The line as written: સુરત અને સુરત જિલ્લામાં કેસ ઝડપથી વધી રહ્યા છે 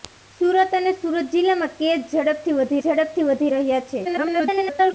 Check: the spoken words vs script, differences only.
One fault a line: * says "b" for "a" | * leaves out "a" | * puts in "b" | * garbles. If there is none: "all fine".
* puts in "ઝડપથી વધી"
* garbles